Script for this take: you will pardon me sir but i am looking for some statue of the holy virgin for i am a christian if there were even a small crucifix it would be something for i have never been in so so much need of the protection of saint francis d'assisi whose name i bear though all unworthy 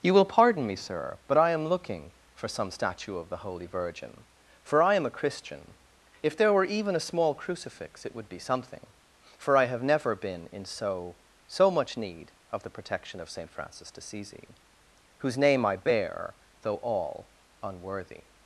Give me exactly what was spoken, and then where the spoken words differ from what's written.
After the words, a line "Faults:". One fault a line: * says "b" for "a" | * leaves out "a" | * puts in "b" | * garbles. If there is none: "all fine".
you will pardon me sir but i am looking for some statue of the holy virgin for i am a christian if there were even a small crucifix it would be something for i have never been in so so much need of the protection of saint francis d'assisi whose name i bear though all unworthy
Faults:
all fine